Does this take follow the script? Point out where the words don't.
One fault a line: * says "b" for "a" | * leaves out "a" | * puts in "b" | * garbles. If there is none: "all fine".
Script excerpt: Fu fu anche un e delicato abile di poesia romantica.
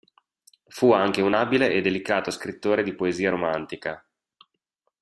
* leaves out "fu"
* puts in "abile"
* says "scrittore" for "abile"